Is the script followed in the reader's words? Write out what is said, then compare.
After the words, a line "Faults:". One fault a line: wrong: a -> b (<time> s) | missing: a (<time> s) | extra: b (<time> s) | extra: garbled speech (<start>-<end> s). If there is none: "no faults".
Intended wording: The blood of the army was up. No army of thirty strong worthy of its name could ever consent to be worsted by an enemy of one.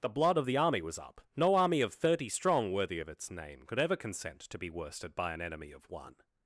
The blood of the army was up. No army of thirty strong worthy of its name could ever consent to be worsted by an enemy of one.
Faults:
no faults